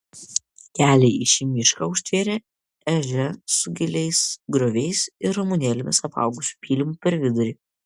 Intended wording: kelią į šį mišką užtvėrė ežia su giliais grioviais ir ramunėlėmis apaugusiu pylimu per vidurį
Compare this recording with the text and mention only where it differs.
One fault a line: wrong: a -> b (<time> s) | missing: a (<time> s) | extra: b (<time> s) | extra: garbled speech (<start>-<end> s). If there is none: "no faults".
no faults